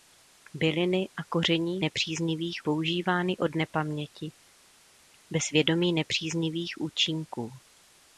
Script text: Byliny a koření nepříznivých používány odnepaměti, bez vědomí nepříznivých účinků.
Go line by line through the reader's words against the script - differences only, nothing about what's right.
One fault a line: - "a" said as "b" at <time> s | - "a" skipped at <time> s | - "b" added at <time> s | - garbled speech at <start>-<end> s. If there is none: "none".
none